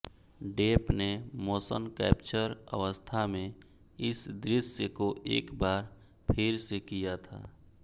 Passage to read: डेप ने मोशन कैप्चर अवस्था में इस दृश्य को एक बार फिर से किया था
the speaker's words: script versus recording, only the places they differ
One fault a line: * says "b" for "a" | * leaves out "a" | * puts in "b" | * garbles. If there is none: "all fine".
all fine